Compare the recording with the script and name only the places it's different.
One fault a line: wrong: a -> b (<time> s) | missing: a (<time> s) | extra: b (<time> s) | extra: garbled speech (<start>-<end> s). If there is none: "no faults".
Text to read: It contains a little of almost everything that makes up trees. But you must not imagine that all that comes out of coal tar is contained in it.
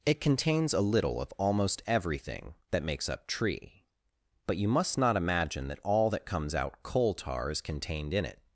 wrong: trees -> tree (3.3 s)
missing: of (6.8 s)